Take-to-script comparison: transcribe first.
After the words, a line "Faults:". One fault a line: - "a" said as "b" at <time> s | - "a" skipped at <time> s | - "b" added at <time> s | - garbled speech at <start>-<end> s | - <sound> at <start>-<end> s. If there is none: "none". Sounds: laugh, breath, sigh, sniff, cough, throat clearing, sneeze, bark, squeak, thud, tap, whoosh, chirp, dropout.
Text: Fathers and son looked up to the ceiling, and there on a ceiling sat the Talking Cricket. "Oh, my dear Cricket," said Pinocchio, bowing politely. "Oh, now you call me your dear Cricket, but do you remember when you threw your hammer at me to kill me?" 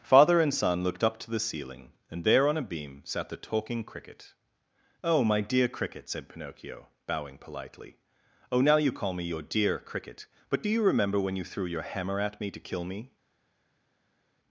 Father and son looked up to the ceiling, and there on a beam sat the Talking Cricket. "Oh, my dear Cricket," said Pinocchio, bowing politely. "Oh, now you call me your dear Cricket, but do you remember when you threw your hammer at me to kill me?"
Faults:
- "Fathers" said as "Father" at 0.0 s
- "ceiling" said as "beam" at 2.6 s